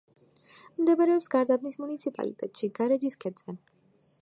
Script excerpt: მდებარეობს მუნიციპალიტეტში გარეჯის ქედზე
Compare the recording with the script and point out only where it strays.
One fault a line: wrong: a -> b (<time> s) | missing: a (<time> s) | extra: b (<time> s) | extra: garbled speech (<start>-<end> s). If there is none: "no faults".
extra: გარდაბნის (1.3 s)